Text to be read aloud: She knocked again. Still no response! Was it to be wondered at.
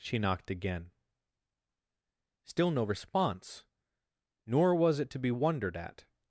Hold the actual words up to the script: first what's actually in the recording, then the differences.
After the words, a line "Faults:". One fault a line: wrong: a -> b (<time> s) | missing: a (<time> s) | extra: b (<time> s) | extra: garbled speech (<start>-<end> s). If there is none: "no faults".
She knocked again. Still no response! Nor was it to be wondered at.
Faults:
extra: Nor (4.5 s)